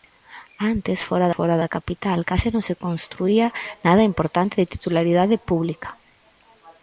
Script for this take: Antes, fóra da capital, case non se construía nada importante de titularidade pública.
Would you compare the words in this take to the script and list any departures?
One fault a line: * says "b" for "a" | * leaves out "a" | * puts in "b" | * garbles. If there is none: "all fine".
* puts in "fóra"